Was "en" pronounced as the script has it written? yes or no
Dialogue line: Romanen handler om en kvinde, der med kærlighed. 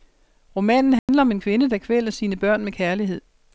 yes